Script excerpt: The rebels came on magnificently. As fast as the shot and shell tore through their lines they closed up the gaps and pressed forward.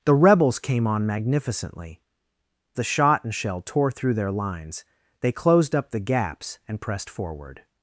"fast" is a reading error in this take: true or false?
true